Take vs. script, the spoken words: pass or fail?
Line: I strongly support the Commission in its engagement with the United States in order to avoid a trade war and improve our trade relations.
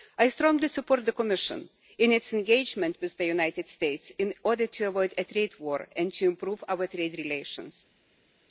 fail